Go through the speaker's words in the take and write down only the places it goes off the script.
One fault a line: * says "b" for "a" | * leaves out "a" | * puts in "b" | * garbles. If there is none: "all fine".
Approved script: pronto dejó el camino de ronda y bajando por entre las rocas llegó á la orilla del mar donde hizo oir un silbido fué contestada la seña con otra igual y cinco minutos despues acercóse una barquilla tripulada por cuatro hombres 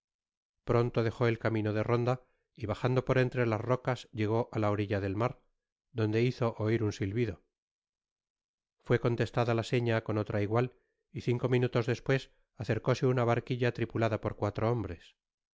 all fine